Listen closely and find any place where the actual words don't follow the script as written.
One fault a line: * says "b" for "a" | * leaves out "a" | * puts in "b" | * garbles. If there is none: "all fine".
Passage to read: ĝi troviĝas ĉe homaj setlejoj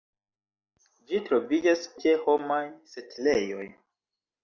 all fine